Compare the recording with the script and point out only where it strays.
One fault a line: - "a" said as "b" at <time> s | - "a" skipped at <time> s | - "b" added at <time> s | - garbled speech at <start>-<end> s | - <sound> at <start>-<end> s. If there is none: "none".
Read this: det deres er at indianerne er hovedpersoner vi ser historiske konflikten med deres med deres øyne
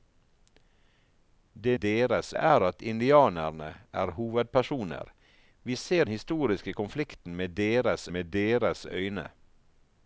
none